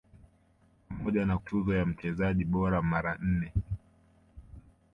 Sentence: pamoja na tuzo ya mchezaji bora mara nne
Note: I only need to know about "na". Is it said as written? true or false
true